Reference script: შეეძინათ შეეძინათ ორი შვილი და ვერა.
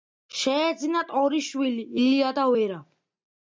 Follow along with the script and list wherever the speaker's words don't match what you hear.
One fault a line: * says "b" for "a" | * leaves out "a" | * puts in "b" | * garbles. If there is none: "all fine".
* leaves out "შეეძინათ"
* puts in "ილია"